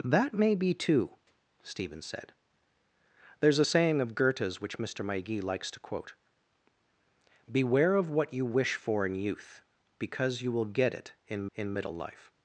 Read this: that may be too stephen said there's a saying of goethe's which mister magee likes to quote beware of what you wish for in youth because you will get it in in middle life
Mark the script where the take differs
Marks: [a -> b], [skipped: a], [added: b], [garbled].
that may be too stephen said there's a saying of goethe's which mister magee likes to quote beware of what you wish for in youth because you will get it in in middle life